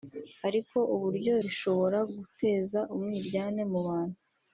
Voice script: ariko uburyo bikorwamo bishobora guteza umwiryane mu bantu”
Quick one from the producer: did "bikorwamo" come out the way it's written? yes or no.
no